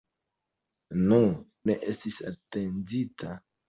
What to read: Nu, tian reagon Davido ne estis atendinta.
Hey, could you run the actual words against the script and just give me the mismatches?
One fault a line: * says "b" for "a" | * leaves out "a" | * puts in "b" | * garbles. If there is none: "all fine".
* leaves out "tian reagon Davido"